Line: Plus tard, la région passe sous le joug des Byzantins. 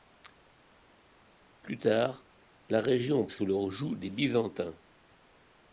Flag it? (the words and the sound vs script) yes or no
yes